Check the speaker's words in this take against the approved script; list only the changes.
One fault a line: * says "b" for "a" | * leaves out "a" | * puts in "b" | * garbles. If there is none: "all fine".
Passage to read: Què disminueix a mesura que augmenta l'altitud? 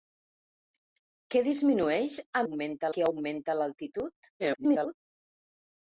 * says "augmenta" for "mesura"
* garbles